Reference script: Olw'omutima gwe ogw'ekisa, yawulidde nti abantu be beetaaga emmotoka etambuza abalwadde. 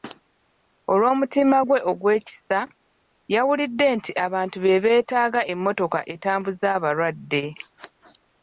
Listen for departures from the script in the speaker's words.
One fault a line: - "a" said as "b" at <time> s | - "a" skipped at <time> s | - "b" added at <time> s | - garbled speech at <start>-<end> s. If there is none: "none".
none